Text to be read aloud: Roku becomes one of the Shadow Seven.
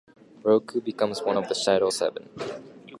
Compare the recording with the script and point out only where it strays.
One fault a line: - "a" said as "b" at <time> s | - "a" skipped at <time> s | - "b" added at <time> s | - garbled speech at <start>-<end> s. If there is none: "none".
none